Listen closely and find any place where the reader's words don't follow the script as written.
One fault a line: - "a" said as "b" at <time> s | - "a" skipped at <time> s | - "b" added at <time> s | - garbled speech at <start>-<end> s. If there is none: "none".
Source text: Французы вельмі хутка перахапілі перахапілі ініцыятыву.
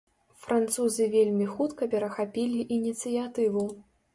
- "перахапілі" skipped at 2.7 s